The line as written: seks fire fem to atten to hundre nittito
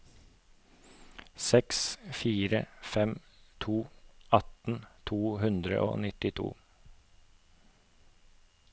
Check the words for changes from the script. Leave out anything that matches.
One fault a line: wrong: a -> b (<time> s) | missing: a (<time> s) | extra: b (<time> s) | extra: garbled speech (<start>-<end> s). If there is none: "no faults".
extra: og (5.9 s)